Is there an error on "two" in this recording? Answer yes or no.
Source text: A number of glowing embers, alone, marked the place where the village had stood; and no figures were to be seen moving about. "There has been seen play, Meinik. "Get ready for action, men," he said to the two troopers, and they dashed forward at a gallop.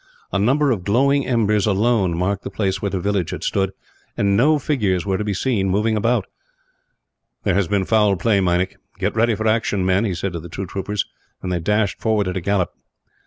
no